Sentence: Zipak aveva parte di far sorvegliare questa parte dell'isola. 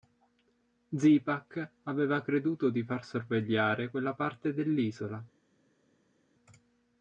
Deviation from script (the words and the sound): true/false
true